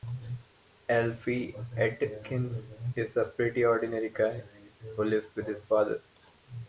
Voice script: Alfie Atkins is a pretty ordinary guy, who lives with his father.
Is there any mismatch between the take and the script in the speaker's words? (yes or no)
no